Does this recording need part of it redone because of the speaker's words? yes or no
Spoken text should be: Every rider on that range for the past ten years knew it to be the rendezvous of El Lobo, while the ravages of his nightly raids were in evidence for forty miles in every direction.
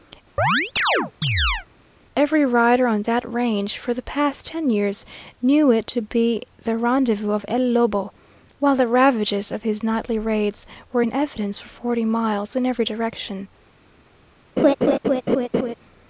no